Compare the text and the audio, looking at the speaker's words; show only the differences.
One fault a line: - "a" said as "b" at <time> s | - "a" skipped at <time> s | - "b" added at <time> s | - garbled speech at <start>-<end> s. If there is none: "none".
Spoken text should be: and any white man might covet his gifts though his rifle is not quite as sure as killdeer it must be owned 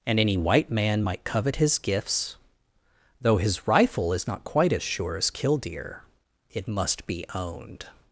none